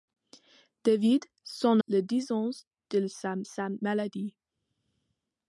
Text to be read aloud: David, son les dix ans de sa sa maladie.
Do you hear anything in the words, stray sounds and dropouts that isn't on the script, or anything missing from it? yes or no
no